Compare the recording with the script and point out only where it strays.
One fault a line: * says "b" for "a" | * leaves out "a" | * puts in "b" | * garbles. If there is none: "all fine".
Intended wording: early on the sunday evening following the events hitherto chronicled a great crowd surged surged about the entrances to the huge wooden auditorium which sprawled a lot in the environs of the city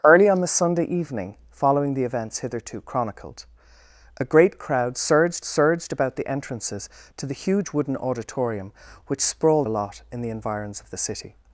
all fine